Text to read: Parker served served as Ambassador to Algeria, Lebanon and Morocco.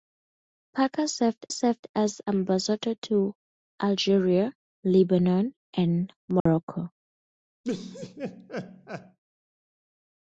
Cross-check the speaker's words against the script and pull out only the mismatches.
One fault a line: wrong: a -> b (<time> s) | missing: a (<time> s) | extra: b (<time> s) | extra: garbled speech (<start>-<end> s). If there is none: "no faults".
no faults